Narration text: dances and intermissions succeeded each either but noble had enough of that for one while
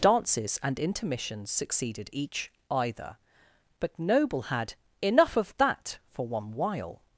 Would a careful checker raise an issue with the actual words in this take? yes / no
no